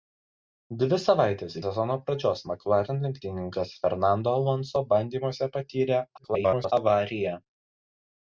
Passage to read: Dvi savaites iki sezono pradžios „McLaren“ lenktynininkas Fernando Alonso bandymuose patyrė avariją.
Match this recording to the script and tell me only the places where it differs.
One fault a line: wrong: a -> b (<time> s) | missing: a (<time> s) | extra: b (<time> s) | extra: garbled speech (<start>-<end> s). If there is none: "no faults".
missing: iki (1.6 s)
extra: garbled speech (6.2-6.7 s)